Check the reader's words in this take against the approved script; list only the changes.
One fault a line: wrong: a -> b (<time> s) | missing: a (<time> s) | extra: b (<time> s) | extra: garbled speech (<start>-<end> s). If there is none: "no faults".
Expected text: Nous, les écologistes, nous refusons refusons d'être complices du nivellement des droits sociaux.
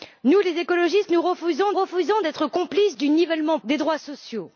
no faults